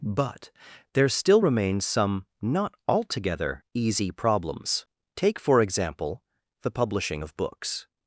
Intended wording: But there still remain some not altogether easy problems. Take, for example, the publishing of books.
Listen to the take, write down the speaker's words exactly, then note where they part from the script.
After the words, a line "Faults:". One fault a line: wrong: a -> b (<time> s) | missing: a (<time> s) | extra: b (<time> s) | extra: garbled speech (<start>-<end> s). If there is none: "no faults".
But there still remain some not altogether easy problems. Take, for example, the publishing of books.
Faults:
no faults